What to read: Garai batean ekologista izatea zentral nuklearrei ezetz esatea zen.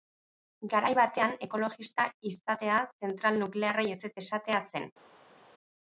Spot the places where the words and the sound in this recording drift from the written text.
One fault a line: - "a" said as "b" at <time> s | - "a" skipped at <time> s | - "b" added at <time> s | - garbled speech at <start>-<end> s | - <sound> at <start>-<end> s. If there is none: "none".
none